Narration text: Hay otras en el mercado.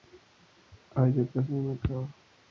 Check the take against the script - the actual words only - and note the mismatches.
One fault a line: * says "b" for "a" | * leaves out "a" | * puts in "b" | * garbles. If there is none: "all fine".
all fine